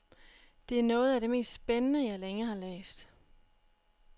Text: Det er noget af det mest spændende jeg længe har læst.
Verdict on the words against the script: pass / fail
pass